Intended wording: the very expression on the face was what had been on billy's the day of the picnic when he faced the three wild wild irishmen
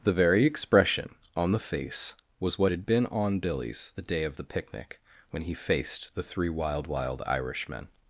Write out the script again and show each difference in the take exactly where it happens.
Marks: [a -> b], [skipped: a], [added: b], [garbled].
the very expression on the face was what had been on billy's the day of the picnic when he faced the three wild wild irishmen